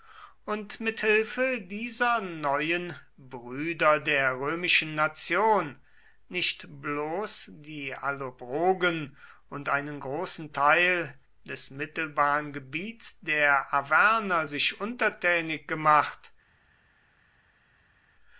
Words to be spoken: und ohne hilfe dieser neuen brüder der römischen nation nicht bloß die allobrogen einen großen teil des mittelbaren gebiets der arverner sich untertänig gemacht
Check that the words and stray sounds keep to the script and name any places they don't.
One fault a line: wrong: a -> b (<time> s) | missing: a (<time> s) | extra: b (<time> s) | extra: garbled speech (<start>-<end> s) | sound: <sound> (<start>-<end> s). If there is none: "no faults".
wrong: ohne -> mit (0.8 s)
extra: und (9.5 s)